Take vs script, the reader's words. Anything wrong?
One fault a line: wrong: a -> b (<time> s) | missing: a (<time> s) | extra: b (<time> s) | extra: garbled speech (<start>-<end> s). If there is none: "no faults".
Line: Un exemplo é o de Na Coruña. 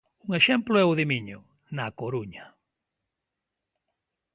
extra: Miño (1.1 s)